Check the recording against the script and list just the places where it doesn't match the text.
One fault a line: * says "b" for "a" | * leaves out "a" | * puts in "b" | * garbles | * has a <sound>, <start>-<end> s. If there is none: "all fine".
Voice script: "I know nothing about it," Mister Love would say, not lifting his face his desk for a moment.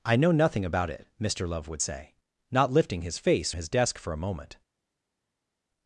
all fine